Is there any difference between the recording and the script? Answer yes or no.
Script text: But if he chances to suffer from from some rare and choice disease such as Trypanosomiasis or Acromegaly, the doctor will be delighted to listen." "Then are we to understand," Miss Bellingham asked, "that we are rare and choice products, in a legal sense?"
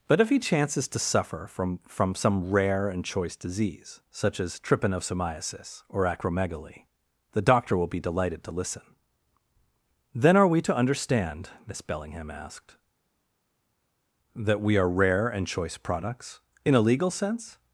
no